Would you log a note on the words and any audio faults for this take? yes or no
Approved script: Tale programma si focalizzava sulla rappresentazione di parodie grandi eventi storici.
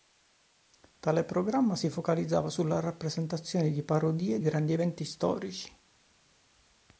no